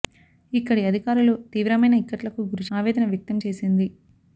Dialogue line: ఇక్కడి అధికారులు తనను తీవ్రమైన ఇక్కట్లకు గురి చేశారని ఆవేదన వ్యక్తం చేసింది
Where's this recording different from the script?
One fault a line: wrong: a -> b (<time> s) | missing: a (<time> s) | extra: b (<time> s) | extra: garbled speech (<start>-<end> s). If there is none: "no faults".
missing: తనను (1.3 s)
missing: చేశారని (2.7 s)